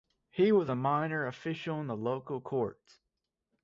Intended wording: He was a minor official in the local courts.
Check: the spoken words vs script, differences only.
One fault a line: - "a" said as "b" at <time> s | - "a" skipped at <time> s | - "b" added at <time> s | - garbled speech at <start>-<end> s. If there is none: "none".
none